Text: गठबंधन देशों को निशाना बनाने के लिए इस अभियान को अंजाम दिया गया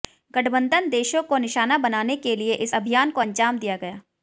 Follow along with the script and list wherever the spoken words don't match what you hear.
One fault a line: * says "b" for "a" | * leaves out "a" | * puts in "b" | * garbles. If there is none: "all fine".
all fine